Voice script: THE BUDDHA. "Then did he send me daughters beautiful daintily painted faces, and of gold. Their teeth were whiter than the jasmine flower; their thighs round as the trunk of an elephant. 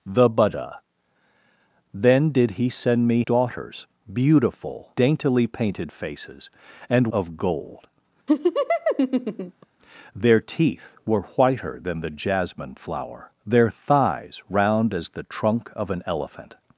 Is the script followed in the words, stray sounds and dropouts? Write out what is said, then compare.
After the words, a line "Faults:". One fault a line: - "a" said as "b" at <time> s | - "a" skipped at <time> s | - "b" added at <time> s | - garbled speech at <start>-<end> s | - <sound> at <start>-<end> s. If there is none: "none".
THE BUDDHA. "Then did he send me daughters beautiful daintily painted faces, and of gold. Their teeth were whiter than the jasmine flower; their thighs round as the trunk of an elephant.
Faults:
- laugh at 8.3-9.7 s